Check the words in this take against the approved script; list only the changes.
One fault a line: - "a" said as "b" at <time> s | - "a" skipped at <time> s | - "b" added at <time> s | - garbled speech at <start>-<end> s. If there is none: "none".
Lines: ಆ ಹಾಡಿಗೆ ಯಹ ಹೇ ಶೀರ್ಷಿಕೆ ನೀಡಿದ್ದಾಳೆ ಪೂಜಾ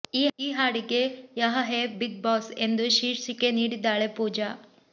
- "ಆ" said as "ಈ" at 0.4 s
- "ಬಿಗ್ ಬಾಸ್ ಎಂದು" added at 2.0 s